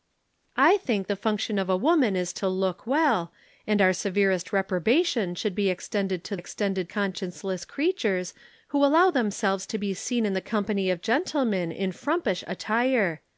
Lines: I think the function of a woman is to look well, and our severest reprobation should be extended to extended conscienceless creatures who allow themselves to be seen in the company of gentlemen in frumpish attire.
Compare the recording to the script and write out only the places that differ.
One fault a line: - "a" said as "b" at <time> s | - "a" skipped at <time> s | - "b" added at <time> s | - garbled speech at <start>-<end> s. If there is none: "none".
none